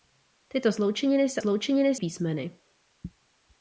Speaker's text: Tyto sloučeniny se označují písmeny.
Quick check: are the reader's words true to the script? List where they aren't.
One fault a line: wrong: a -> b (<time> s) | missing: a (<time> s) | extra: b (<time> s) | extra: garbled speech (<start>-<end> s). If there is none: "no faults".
wrong: označují -> sloučeniny (1.4 s)